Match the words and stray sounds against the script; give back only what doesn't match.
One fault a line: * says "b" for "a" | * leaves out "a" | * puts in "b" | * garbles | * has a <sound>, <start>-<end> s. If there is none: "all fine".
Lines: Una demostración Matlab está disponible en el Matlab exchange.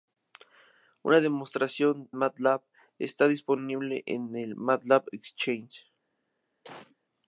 * has a cough, 6.6-7.0 s